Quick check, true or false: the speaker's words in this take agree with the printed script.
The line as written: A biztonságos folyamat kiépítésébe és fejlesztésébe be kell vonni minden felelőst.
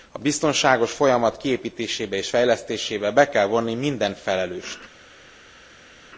true